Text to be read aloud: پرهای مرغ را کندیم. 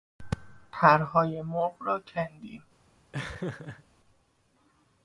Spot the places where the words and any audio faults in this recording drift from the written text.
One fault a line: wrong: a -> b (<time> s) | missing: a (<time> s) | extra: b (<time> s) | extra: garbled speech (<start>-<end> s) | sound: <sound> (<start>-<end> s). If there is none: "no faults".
sound: laugh (3.1-3.8 s)